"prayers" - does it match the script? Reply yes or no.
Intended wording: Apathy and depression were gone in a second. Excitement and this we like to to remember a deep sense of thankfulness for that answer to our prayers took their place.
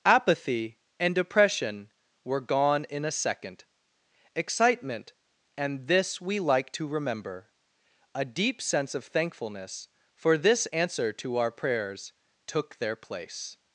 yes